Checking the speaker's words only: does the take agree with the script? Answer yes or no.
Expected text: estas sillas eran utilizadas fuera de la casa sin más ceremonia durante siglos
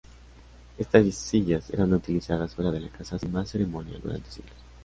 yes